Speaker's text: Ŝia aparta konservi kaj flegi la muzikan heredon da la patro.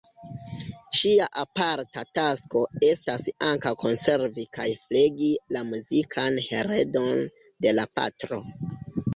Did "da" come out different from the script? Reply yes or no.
yes